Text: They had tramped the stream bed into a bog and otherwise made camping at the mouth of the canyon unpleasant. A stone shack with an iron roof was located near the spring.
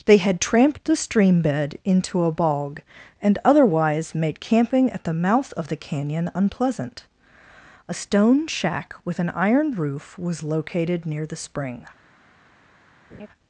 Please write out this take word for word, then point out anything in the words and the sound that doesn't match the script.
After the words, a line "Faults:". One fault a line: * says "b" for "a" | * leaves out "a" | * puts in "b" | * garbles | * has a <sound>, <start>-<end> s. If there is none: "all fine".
They had tramped the stream bed into a bog and otherwise made camping at the mouth of the canyon unpleasant. A stone shack with an iron roof was located near the spring.
Faults:
* has a laugh, 13.1-13.3 s